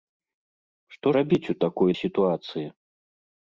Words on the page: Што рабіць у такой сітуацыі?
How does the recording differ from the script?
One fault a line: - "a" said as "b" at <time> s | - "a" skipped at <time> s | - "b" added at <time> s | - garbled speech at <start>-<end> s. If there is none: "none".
none